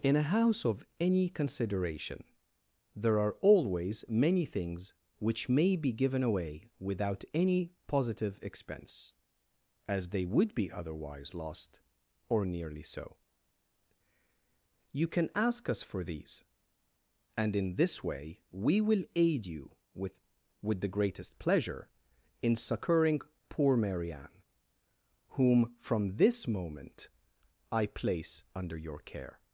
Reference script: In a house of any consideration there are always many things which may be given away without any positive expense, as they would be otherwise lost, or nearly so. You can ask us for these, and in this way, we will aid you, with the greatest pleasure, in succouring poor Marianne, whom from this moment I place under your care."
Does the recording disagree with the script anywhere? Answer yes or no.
yes